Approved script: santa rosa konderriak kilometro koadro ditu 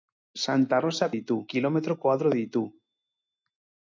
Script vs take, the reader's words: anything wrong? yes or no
yes